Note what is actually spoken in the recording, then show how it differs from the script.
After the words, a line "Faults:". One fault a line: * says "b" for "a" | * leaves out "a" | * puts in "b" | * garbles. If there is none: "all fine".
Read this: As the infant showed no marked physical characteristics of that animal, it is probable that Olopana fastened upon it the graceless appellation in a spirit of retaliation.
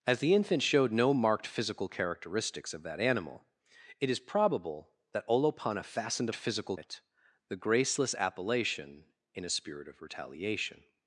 As the infant showed no marked physical characteristics of that animal, it is probable that Olopana fastened physical it the graceless appellation in a spirit of retaliation.
Faults:
* says "physical" for "upon"